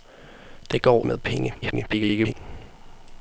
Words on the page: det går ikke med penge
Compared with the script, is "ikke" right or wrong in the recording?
wrong